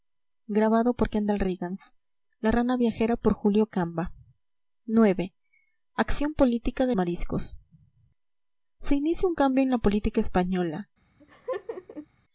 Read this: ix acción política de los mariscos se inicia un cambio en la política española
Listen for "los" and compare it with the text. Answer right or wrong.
wrong